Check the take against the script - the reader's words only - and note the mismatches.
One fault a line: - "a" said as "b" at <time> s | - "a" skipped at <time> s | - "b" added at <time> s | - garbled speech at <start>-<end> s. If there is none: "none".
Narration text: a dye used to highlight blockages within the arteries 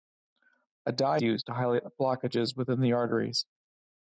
none